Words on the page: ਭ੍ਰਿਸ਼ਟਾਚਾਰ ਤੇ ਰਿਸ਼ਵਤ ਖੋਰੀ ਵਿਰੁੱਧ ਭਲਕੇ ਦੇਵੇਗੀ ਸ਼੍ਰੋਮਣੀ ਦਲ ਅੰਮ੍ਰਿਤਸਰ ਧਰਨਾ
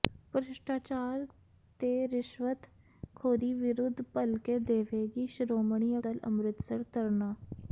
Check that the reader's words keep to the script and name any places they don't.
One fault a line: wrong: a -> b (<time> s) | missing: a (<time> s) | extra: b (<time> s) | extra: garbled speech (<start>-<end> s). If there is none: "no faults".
no faults